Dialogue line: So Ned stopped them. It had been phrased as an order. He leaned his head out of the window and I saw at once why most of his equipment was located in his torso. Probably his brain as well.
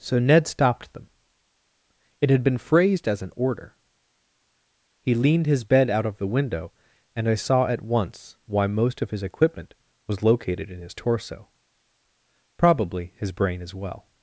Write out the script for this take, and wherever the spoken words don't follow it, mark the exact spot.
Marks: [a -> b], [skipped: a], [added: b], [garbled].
So Ned stopped them. It had been phrased as an order. He leaned his [head -> bed] out of the window and I saw at once why most of his equipment was located in his torso. Probably his brain as well.